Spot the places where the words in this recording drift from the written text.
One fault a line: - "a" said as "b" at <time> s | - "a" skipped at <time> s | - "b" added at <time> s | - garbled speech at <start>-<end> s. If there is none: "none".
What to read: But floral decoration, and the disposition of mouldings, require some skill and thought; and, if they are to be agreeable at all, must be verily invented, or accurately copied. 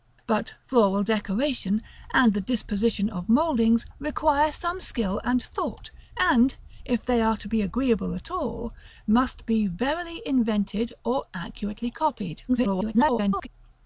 - garbled speech at 12.5-13.5 s